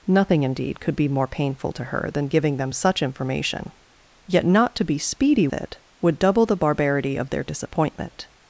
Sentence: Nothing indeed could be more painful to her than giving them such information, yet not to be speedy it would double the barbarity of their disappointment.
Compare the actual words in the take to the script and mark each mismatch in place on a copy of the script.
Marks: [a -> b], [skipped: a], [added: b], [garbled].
Nothing indeed could be more painful to her than giving them such information, yet not to be speedy it would double the barbarity of their disappointment.